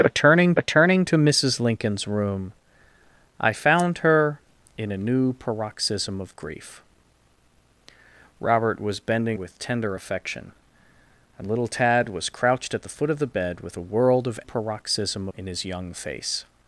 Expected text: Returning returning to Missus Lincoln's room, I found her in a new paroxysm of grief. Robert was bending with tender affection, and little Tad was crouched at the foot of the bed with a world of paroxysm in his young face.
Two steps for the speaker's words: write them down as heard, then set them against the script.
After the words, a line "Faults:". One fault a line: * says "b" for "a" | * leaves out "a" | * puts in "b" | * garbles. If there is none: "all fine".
Returning returning to Missus Lincoln's room, I found her in a new paroxysm of grief. Robert was bending with tender affection, and little Tad was crouched at the foot of the bed with a world of paroxysm in his young face.
Faults:
all fine